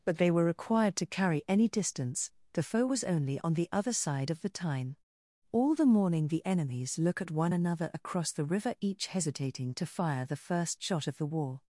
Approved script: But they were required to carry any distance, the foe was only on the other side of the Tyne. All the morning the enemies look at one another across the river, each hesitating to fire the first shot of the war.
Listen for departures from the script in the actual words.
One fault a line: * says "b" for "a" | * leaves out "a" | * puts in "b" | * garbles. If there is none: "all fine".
all fine